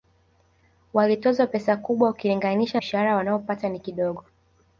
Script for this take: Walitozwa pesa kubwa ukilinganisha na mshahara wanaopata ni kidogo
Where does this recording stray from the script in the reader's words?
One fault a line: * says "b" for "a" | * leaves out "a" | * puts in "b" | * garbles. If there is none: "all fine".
* leaves out "na"